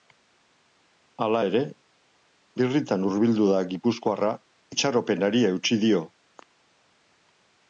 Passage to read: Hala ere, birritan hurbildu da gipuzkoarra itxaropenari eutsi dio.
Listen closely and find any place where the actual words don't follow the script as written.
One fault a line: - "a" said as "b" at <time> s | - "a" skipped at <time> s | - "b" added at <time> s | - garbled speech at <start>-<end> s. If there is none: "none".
none